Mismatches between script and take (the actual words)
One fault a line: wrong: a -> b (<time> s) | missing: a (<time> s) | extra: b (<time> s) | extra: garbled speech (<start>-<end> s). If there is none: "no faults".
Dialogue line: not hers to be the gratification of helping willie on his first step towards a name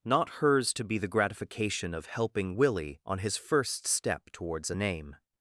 no faults